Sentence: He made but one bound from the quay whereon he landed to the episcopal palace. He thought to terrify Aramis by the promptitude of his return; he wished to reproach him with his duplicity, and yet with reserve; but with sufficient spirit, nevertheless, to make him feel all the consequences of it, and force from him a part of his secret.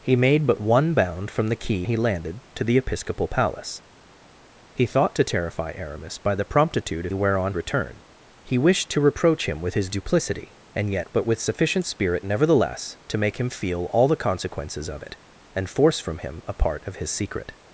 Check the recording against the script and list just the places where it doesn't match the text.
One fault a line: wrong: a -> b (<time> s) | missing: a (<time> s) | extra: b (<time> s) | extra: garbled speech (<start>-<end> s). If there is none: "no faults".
missing: whereon (1.9 s)
wrong: his -> whereon (7.1 s)
missing: with reserve (11.1 s)